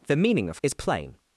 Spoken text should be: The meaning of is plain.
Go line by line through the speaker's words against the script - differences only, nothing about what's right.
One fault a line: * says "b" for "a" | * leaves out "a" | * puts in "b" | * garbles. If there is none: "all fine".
all fine